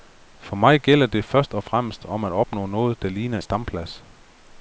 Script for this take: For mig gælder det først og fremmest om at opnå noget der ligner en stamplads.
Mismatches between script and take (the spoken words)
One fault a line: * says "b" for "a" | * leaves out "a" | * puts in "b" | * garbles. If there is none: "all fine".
* leaves out "en"